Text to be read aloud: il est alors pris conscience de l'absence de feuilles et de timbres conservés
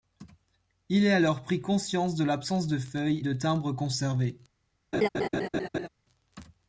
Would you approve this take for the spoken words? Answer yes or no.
no